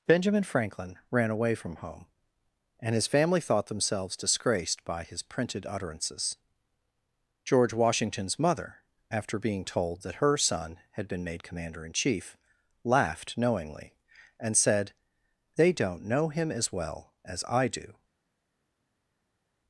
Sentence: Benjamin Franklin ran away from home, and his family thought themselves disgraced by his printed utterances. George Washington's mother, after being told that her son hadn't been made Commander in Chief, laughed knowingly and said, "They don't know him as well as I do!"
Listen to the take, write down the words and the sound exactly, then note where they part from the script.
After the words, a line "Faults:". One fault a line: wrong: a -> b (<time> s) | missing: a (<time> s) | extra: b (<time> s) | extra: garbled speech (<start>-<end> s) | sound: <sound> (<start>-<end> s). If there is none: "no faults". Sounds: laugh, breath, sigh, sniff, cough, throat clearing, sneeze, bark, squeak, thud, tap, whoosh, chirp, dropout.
Benjamin Franklin ran away from home, and his family thought themselves disgraced by his printed utterances. George Washington's mother, after being told that her son had been made Commander in Chief, laughed knowingly and said, "They don't know him as well as I do!"
Faults:
wrong: hadn't -> had (10.9 s)